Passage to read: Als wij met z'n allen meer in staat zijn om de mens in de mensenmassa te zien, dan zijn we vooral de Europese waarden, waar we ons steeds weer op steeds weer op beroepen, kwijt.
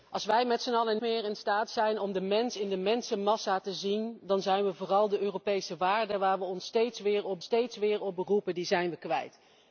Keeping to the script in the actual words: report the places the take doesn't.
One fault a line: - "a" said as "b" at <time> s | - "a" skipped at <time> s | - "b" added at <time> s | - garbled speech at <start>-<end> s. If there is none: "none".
none